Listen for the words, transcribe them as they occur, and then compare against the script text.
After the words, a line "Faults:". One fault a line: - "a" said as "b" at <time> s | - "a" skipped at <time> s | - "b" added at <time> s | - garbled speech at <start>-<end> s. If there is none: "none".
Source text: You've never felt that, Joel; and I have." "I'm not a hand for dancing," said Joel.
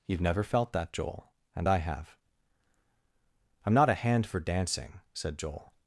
You've never felt that, Joel; and I have." "I'm not a hand for dancing," said Joel.
Faults:
none